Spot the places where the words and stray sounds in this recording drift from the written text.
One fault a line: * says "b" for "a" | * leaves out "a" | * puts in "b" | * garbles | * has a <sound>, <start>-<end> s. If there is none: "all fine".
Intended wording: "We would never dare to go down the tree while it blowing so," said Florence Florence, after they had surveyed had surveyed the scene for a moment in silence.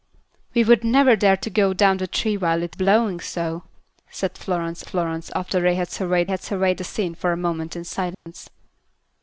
* has a dropout, 8.1-8.3 s